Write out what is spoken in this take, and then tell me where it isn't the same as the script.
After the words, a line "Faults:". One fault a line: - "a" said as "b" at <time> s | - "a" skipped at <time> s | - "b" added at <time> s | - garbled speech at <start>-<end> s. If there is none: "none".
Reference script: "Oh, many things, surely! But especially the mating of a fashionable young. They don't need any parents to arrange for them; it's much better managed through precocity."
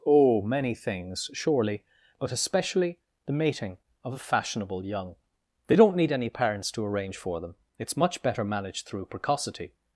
"Oh, many things, surely! But especially the mating of a fashionable young. They don't need any parents to arrange for them; it's much better managed through precocity."
Faults:
none